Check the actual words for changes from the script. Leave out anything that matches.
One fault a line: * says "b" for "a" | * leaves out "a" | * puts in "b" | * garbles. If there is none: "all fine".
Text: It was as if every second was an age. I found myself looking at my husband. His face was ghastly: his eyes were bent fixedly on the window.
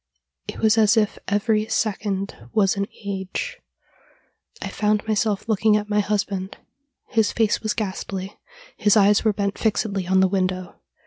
all fine